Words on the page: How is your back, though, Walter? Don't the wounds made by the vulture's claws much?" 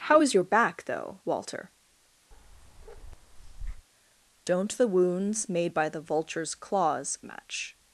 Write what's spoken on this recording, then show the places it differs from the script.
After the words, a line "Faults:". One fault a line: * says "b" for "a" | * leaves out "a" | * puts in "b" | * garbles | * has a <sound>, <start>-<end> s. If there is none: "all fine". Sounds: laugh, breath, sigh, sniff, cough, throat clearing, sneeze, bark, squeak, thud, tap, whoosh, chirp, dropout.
How is your back, though, Walter? Don't the wounds made by the vulture's claws much?"
Faults:
* has a bark, 2.3-3.9 s